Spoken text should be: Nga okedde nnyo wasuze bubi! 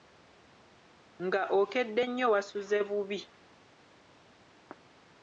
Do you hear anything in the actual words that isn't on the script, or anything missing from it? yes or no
no